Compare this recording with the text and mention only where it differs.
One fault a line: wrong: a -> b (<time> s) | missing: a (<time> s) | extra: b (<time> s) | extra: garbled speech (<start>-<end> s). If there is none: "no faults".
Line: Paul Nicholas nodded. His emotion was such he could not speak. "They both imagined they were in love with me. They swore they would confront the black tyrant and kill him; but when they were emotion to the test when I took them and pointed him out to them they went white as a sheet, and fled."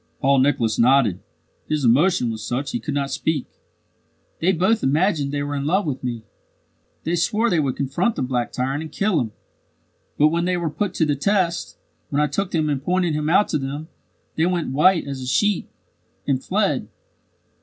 wrong: emotion -> put (10.7 s)